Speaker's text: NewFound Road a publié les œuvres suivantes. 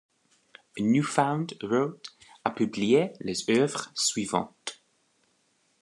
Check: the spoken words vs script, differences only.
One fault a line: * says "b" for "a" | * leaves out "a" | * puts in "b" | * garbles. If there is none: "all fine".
all fine